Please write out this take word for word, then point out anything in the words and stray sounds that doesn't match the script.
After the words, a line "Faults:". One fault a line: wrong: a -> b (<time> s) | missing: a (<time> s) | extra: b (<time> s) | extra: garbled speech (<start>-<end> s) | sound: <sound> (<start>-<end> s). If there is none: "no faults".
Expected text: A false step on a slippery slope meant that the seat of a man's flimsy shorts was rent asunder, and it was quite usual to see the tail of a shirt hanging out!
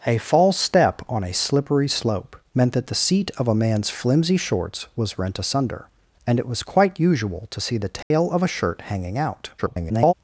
A false step on a slippery slope meant that the seat of a man's flimsy shorts was rent asunder, and it was quite usual to see the tail of a shirt hanging out! [garbled]
Faults:
sound: dropout (8.0-8.1 s)
extra: garbled speech (9.6-10.1 s)